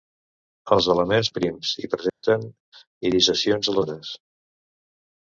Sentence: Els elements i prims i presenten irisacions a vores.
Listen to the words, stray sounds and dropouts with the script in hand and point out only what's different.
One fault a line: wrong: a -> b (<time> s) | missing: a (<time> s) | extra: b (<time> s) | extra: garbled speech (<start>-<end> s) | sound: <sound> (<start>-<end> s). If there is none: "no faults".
sound: dropout (2.1-2.2 s)